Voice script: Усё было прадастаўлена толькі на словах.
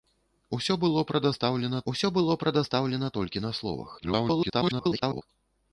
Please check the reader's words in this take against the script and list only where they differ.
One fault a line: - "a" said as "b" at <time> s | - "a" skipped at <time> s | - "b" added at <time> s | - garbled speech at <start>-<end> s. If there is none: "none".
- "усё было прадастаўлена" added at 1.9 s
- garbled speech at 4.0-5.2 s